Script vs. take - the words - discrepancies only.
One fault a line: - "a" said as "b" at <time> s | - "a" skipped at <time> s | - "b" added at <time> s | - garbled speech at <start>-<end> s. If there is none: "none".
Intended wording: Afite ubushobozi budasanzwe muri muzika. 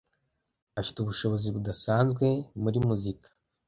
none